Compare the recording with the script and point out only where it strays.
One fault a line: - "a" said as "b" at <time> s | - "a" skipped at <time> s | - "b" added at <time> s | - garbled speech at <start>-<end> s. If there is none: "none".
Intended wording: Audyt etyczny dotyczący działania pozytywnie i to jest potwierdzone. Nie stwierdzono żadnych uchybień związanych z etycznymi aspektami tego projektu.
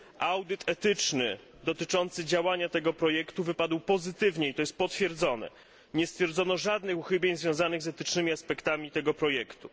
- "tego projektu wypadł" added at 2.7 s